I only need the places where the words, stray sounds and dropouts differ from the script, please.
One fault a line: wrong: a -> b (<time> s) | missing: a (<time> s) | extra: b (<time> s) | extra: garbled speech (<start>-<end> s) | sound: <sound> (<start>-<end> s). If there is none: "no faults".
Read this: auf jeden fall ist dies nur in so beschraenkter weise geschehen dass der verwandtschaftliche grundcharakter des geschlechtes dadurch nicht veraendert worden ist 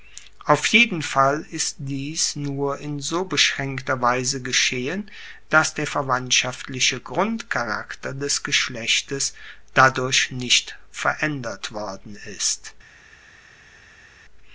no faults